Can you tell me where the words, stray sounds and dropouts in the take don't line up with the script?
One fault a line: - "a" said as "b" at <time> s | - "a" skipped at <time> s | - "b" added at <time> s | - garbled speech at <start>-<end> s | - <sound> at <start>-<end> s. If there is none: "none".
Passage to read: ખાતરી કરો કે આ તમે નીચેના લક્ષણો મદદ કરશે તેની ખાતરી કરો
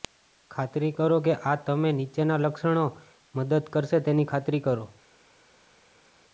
none